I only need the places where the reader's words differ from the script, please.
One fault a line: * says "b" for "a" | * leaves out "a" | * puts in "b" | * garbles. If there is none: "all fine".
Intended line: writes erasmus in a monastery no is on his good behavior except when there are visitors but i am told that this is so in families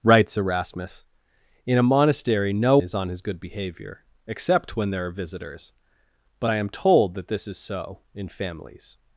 all fine